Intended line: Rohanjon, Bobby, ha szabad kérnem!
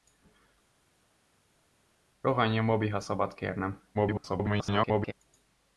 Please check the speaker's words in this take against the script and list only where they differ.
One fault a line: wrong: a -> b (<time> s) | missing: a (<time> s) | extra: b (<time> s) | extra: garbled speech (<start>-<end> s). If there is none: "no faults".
extra: garbled speech (3.9-5.1 s)